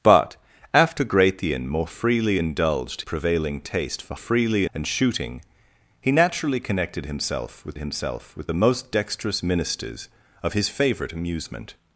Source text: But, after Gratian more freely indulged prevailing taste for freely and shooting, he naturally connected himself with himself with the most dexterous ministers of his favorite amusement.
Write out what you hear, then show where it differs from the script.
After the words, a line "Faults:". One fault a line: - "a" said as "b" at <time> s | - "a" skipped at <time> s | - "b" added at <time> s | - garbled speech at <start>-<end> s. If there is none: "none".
But, after Gratian more freely indulged prevailing taste for freely and shooting, he naturally connected himself with himself with the most dexterous ministers of his favorite amusement.
Faults:
none